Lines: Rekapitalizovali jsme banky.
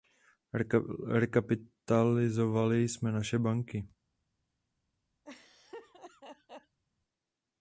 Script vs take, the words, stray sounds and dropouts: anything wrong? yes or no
yes